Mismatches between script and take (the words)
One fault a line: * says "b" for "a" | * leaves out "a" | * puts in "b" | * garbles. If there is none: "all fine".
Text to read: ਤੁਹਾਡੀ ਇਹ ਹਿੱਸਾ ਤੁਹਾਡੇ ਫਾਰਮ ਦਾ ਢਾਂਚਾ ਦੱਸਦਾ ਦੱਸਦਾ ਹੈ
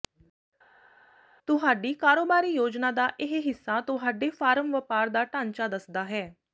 * puts in "ਕਾਰੋਬਾਰੀ ਯੋਜਨਾ ਦਾ"
* puts in "ਵਪਾਰ"
* leaves out "ਦੱਸਦਾ"